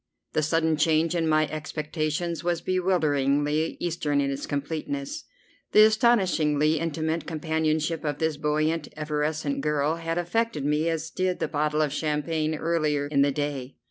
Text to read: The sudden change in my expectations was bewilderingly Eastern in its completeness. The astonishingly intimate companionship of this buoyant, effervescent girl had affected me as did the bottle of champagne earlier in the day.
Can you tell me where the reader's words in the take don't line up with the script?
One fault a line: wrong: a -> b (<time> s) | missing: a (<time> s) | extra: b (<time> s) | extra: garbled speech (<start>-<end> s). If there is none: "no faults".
no faults